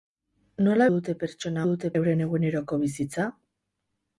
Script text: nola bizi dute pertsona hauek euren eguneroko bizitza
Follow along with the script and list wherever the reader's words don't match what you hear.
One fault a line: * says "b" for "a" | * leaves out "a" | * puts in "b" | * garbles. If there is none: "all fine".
* leaves out "bizi"
* says "dute" for "hauek"